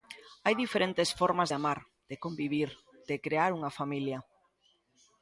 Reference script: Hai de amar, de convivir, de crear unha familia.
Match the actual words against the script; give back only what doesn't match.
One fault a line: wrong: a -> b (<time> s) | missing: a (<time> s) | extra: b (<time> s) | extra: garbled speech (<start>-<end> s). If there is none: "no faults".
extra: diferentes formas (0.6 s)